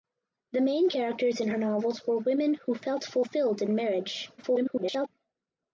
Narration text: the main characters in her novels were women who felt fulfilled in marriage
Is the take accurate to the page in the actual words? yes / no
no